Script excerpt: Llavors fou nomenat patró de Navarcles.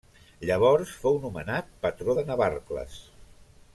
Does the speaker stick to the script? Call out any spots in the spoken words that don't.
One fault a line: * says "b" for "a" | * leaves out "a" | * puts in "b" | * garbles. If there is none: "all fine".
all fine